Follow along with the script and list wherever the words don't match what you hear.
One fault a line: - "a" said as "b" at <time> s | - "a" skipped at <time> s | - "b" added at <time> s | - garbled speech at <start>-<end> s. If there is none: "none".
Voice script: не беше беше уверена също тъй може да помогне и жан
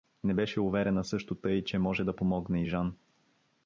- "беше" skipped at 0.6 s
- "че" added at 1.6 s